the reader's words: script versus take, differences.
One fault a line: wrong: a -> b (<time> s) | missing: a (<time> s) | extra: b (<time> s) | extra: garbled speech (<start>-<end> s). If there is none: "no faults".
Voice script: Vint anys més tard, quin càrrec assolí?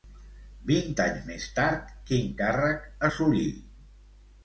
no faults